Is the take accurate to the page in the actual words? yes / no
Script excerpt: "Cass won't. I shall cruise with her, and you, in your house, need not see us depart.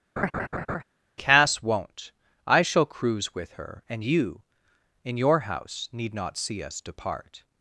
yes